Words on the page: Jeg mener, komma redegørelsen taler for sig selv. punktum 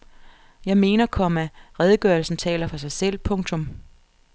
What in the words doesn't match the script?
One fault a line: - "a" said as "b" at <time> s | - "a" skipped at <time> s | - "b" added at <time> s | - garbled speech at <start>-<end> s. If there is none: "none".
none